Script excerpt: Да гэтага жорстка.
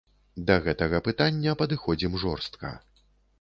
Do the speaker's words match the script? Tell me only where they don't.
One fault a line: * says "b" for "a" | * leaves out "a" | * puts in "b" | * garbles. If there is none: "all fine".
* puts in "пытання падыходзім"